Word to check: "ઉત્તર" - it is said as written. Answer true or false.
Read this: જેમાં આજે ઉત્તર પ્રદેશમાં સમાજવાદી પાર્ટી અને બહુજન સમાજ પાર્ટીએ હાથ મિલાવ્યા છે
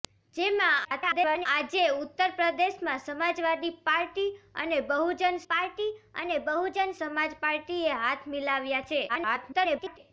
true